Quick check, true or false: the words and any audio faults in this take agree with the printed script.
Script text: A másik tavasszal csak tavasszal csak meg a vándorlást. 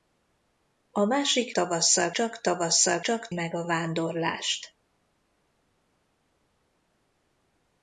true